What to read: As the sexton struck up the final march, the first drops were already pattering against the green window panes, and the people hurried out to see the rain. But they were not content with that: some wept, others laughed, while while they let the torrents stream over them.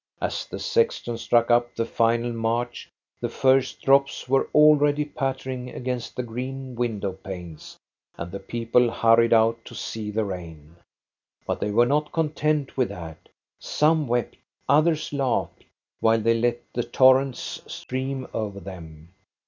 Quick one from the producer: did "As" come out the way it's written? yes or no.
yes